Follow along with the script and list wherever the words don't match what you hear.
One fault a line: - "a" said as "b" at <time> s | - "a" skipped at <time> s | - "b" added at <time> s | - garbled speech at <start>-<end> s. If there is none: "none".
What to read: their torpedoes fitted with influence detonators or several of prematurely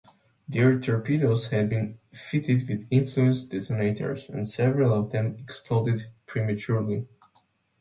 - "had been" added at 1.5 s
- "or" said as "and" at 4.3 s
- "them exploded" added at 5.1 s